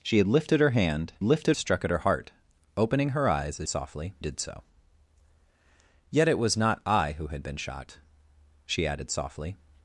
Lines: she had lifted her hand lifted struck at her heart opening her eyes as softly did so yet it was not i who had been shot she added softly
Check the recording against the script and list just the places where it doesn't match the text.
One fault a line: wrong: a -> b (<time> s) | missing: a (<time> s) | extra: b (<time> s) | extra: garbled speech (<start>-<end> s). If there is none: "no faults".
no faults